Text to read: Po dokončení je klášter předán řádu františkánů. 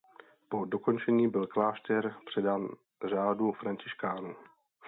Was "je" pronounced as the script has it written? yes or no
no